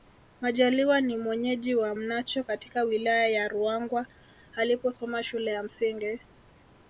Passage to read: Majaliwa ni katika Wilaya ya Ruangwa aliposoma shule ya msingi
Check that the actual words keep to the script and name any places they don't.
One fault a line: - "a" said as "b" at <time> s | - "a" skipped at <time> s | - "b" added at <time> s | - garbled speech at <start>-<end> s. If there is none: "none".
- "mwenyeji wa Mnacho" added at 1.2 s